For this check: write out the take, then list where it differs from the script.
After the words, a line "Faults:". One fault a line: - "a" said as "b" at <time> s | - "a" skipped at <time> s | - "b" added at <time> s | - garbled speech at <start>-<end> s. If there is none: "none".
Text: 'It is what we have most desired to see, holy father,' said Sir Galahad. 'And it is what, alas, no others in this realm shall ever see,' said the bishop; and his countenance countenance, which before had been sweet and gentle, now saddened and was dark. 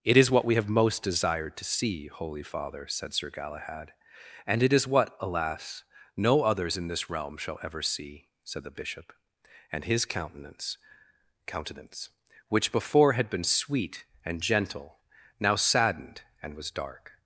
'It is what we have most desired to see, holy father,' said Sir Galahad. 'And it is what, alas, no others in this realm shall ever see,' said the bishop; and his countenance countenance, which before had been sweet and gentle, now saddened and was dark.
Faults:
none